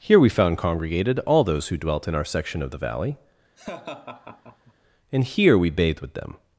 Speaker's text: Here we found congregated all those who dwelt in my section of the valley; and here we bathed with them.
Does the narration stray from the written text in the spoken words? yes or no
yes